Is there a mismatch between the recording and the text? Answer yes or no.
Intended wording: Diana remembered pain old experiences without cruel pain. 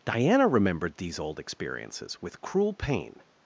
yes